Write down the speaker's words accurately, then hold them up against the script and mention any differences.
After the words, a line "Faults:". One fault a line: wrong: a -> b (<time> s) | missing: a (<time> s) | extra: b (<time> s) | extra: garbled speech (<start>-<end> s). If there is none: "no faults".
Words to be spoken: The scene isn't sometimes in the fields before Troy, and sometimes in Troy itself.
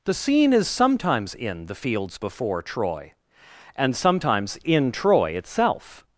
The scene is sometimes in the fields before Troy, and sometimes in Troy itself.
Faults:
wrong: isn't -> is (0.5 s)